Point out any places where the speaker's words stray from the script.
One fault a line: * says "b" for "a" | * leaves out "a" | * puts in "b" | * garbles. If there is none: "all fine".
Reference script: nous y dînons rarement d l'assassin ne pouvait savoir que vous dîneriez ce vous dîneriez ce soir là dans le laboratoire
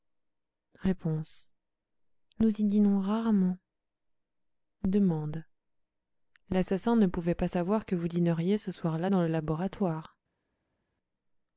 * puts in "pas"
* leaves out "vous dîneriez ce"